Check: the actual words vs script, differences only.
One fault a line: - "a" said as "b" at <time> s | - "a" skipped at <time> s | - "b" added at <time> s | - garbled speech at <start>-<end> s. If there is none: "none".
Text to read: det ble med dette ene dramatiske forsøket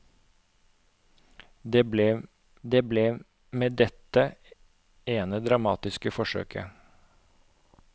- "det ble" added at 2.6 s